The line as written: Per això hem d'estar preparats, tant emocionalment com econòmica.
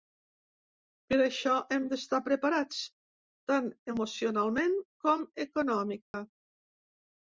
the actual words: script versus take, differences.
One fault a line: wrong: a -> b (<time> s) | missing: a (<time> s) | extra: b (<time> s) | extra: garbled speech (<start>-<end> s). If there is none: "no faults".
no faults